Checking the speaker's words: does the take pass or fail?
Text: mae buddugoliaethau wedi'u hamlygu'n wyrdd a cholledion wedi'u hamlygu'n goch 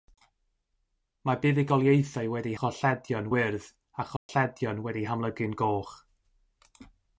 fail